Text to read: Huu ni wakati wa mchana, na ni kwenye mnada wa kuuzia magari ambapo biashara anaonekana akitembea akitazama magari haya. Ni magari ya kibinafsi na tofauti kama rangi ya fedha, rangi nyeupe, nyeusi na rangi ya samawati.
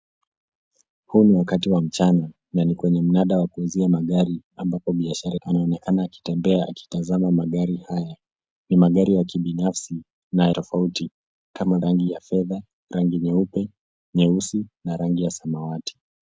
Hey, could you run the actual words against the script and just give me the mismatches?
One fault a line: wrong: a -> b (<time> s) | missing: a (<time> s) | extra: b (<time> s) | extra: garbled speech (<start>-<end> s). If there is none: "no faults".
no faults